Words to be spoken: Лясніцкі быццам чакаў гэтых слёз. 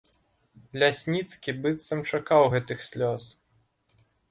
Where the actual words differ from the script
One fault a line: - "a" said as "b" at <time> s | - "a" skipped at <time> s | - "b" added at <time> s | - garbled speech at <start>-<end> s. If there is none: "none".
none